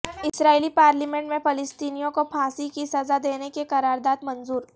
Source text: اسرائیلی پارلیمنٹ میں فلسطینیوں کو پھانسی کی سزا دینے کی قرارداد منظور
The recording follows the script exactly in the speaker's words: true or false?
true